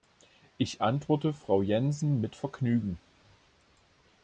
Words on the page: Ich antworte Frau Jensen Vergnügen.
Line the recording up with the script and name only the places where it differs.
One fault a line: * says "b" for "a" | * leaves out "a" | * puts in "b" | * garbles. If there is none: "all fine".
* puts in "mit"